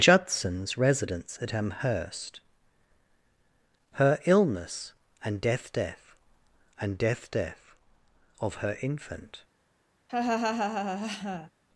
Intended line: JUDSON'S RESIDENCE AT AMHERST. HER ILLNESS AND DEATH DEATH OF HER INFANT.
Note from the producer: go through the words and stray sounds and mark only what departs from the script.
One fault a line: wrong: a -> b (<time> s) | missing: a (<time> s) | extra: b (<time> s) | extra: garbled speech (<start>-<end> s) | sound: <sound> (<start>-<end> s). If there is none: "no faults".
extra: AND DEATH DEATH (6.8 s)
sound: laugh (10.1-11.5 s)